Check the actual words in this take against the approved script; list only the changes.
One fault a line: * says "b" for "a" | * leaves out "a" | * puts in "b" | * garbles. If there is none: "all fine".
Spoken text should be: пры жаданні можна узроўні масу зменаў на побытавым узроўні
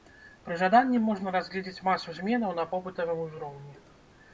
* says "разгледзець" for "узроўні"